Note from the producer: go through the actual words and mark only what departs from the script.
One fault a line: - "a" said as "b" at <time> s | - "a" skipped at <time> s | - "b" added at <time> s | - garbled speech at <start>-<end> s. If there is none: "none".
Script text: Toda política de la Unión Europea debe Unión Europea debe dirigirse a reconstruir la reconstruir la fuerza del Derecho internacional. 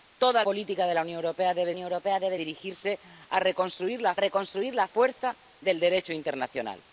none